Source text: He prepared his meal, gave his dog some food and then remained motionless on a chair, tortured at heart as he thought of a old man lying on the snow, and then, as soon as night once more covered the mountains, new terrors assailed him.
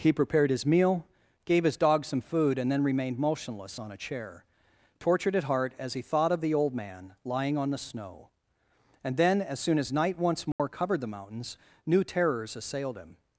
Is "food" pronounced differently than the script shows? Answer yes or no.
no